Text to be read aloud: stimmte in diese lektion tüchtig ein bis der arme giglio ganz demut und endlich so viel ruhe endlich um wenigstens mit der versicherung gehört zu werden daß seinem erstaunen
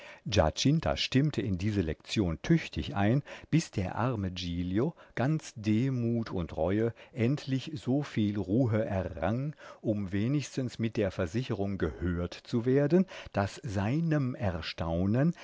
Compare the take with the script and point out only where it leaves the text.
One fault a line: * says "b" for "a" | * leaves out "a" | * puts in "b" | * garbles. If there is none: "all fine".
* puts in "reue"
* says "errang" for "endlich"